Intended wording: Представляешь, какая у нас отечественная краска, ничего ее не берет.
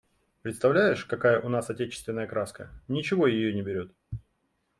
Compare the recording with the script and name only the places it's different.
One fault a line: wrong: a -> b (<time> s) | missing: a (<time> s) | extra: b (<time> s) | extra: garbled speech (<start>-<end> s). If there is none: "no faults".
no faults